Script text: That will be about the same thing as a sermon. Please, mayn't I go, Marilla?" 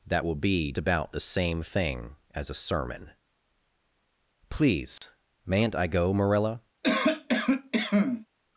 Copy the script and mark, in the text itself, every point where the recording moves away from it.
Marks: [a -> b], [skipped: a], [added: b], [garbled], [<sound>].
That will be about the same thing as a sermon. Please, [dropout] mayn't I go, Marilla?" [cough]